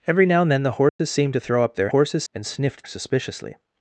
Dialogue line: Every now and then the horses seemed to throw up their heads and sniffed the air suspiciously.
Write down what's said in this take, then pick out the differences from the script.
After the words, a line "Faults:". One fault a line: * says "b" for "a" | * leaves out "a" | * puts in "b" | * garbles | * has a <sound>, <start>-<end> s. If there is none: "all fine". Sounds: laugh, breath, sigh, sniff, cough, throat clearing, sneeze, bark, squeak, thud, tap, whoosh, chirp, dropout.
Every now and then the horses seemed to throw up their horses and sniffed suspiciously.
Faults:
* has a dropout, 0.9-1.0 s
* says "horses" for "heads"
* leaves out "the air"